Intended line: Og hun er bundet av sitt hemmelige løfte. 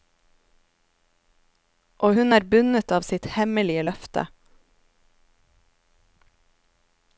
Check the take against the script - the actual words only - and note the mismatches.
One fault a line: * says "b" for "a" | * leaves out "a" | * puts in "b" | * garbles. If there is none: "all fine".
all fine